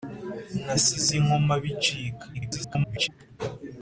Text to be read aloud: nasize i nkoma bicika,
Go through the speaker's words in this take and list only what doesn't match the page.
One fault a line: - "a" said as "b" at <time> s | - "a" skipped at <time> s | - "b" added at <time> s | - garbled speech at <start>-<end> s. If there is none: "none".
- garbled speech at 2.3-3.1 s